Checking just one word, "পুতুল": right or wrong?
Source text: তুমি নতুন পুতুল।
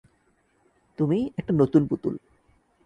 right